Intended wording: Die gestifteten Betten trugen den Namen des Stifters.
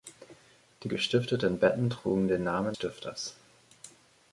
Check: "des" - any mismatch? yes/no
yes